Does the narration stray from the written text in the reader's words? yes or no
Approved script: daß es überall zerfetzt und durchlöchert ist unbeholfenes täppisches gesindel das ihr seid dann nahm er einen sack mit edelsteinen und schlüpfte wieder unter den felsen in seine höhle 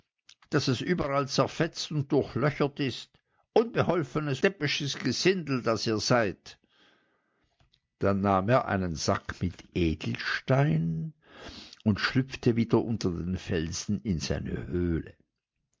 no